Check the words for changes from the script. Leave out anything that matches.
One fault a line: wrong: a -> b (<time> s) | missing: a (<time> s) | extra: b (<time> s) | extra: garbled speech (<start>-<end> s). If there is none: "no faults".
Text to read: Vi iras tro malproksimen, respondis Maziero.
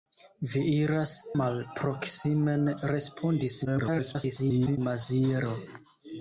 missing: tro (1.1 s)
extra: garbled speech (3.6-4.8 s)